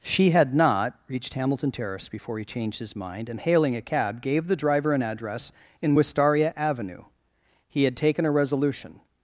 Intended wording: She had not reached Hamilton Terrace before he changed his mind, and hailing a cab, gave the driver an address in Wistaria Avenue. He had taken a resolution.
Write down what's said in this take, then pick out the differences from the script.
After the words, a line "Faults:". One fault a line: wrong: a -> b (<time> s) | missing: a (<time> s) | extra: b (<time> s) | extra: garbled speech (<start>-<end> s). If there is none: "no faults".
She had not reached Hamilton Terrace before he changed his mind, and hailing a cab, gave the driver an address in Wistaria Avenue. He had taken a resolution.
Faults:
no faults